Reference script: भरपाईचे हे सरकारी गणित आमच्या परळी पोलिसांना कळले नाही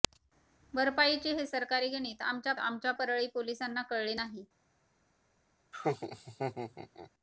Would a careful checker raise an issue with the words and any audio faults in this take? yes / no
yes